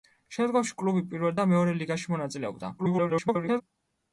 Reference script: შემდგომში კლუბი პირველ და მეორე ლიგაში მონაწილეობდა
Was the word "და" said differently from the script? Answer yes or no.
no